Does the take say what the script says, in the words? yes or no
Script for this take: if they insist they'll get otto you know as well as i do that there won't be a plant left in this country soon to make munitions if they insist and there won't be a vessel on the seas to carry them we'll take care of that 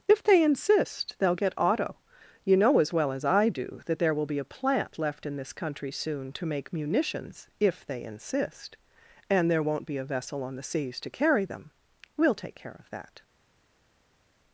no